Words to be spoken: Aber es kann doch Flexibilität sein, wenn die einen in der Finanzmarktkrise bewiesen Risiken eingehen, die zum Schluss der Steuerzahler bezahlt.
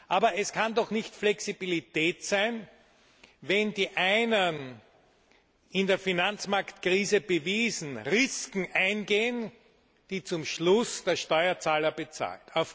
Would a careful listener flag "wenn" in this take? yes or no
no